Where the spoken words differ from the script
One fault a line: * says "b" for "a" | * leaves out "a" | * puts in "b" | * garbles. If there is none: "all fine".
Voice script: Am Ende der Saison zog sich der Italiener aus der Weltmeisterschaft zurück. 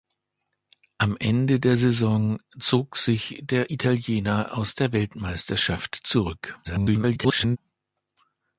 * garbles